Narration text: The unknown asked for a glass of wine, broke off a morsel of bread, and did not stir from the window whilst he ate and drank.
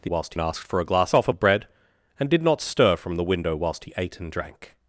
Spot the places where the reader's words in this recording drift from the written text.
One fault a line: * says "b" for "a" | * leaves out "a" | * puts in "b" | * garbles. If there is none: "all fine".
* says "whilst" for "unknown"
* leaves out "of wine broke"
* leaves out "morsel"